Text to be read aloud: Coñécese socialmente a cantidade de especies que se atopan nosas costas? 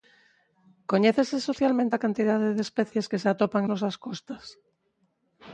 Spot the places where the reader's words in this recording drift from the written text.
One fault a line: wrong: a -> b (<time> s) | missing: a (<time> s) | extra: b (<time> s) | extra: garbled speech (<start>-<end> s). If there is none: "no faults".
no faults